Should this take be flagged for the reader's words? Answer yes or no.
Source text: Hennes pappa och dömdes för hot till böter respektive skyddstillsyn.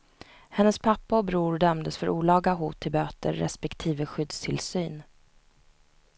yes